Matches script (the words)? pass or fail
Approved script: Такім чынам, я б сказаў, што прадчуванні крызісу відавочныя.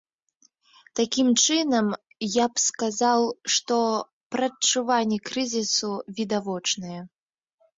pass